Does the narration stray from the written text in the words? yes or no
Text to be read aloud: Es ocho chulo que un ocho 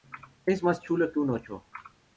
yes